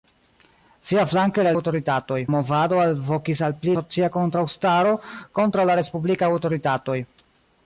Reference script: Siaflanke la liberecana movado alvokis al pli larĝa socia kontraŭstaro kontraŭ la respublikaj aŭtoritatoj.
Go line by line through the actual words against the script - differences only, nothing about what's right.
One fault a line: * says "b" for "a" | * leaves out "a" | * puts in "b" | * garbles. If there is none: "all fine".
* says "aŭtoritatoj" for "liberecana"
* leaves out "larĝa"